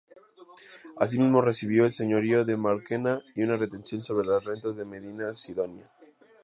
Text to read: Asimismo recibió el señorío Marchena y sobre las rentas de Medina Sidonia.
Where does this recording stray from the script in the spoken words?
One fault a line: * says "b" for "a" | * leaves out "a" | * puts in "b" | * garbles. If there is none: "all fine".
* puts in "de"
* puts in "una retención"